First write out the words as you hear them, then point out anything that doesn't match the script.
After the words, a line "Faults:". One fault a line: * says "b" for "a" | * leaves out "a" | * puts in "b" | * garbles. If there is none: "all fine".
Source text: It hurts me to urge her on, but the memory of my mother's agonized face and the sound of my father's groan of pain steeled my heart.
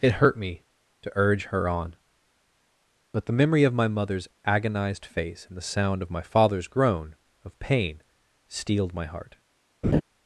It hurt me to urge her on, but the memory of my mother's agonized face and the sound of my father's groan of pain steeled my heart.
Faults:
* says "hurt" for "hurts"